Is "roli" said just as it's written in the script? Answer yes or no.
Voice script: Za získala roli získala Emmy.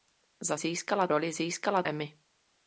yes